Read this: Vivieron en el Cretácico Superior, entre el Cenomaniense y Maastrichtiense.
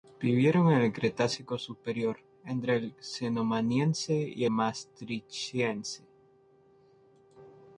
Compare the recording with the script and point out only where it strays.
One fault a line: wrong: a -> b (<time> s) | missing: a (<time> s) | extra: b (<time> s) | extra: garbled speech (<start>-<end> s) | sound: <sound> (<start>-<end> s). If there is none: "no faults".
no faults